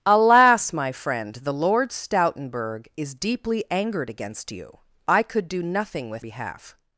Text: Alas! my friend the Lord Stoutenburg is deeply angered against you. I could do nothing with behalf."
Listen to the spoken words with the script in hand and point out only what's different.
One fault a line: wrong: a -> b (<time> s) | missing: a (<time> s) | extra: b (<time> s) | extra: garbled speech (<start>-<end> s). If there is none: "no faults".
no faults